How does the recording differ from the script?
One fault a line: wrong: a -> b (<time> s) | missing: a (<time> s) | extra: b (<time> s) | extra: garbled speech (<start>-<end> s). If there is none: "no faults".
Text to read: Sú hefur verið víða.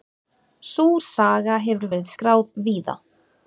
extra: saga (1.1 s)
extra: skráð (2.1 s)